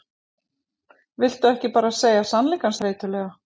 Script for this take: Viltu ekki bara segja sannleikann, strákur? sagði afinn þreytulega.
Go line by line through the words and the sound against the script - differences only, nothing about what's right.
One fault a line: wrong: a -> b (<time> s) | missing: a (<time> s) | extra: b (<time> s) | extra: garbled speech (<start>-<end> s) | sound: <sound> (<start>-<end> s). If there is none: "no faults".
missing: strákur sagði afinn (2.8 s)